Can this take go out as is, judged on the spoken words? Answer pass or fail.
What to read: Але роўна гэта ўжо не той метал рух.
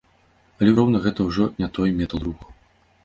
pass